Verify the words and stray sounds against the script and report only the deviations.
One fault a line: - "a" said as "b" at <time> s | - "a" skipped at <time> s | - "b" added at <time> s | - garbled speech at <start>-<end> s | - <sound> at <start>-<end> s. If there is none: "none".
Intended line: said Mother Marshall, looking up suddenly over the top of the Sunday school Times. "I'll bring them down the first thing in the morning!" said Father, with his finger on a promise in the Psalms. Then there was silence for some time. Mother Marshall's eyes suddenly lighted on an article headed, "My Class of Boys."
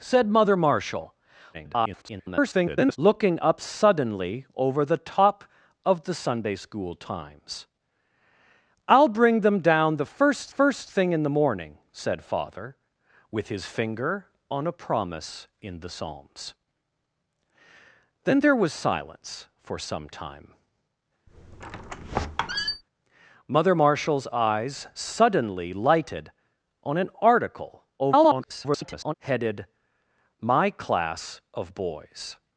- garbled speech at 1.5-3.0 s
- "first" added at 10.5 s
- squeak at 21.3-22.8 s
- garbled speech at 28.0-29.1 s